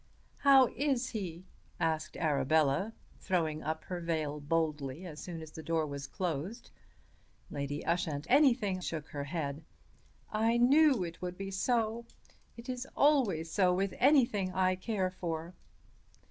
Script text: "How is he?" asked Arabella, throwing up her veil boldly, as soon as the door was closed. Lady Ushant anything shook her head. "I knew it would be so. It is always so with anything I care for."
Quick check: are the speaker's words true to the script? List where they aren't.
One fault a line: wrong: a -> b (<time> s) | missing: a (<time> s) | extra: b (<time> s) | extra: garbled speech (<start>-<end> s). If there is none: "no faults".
no faults